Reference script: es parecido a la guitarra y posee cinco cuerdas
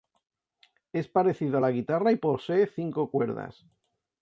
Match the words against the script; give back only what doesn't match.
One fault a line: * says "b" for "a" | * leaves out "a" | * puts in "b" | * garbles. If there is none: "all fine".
all fine